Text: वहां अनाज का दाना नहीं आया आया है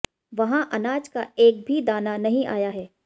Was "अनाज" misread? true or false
false